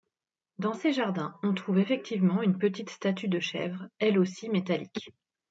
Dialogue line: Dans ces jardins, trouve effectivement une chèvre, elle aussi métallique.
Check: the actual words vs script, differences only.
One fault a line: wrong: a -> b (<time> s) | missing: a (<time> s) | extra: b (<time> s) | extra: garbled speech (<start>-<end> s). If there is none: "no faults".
extra: on (1.4 s)
extra: petite statue de (2.6 s)